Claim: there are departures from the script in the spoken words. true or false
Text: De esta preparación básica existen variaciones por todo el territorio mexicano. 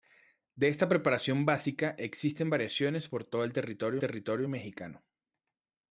true